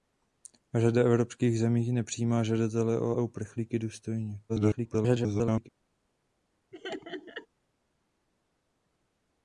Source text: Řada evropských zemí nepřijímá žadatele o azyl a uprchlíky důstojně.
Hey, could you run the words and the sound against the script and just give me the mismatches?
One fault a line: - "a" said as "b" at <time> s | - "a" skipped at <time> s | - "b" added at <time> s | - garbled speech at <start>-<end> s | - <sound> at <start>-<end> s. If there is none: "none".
- "azyl" skipped at 3.2 s
- garbled speech at 4.5-5.7 s
- laugh at 6.7-7.5 s